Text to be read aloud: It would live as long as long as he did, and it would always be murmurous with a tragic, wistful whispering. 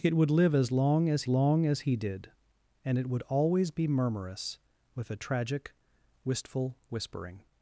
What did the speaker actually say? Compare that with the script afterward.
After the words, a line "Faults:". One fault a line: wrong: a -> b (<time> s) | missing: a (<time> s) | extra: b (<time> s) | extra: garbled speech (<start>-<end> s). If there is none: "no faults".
It would live as long as long as he did, and it would always be murmurous with a tragic, wistful whispering.
Faults:
no faults